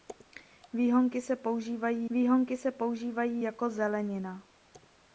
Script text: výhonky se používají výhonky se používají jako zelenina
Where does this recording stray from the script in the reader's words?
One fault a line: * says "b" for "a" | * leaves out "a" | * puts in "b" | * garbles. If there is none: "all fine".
all fine